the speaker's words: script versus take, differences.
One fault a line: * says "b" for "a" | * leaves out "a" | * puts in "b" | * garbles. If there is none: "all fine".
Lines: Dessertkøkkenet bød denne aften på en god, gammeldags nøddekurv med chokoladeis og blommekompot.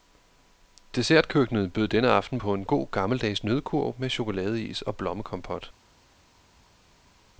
all fine